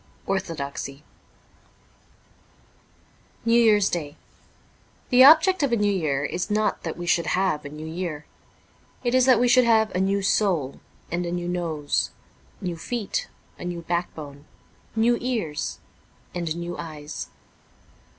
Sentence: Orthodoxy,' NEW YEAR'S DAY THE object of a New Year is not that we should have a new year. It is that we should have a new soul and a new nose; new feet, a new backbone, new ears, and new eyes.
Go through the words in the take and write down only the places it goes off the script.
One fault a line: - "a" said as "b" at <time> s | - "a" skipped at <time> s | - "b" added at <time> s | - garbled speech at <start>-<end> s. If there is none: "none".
none